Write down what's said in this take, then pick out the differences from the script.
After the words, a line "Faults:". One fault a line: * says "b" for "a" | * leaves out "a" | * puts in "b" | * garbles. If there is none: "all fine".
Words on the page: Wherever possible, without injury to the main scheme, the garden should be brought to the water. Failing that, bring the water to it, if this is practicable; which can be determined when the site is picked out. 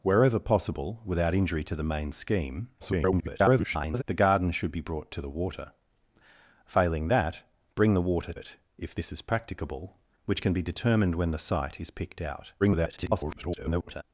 Wherever possible, without injury to the main scheme, [garbled] the garden should be brought to the water. Failing that, bring the water it, if this is practicable; which can be determined when the site is picked out. [garbled]
Faults:
* garbles
* leaves out "to"
* garbles